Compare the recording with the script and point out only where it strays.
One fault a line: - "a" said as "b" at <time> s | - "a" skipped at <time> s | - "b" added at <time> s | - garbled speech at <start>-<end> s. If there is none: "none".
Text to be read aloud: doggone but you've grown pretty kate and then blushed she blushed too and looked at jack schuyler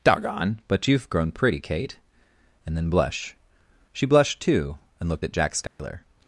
- "blushed" said as "blush" at 2.9 s